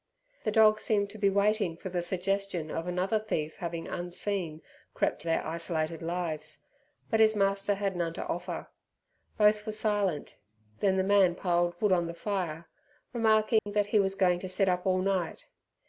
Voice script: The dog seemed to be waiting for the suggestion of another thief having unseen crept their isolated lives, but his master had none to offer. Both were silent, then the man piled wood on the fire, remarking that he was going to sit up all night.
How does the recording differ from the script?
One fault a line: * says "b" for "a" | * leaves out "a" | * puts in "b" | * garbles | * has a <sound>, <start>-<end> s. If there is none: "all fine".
* has a dropout, 13.6-13.7 s